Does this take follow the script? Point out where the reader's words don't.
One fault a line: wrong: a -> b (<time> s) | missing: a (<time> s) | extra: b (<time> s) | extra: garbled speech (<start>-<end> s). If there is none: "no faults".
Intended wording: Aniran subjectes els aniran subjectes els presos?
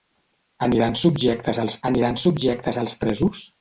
no faults